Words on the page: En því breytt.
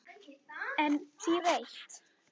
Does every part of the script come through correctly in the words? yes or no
yes